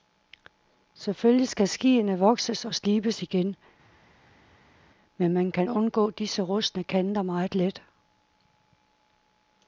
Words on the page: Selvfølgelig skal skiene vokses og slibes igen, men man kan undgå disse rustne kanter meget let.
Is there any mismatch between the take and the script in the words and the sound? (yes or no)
no